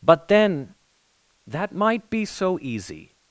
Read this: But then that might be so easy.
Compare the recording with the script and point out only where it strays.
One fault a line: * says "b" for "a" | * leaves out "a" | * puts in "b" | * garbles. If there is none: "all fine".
all fine